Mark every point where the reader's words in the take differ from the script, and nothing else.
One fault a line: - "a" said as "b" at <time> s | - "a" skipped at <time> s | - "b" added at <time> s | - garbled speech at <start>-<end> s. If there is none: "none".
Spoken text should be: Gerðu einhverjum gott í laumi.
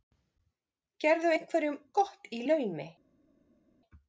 none